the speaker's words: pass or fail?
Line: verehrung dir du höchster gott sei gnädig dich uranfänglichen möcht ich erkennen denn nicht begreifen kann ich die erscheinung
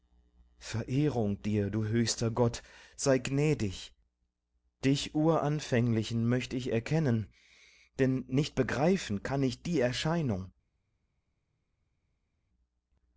pass